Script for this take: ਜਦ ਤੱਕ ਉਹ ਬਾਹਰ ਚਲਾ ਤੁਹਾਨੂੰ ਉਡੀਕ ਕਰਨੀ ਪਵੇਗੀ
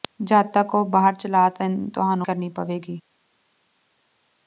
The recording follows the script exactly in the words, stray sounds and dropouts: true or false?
false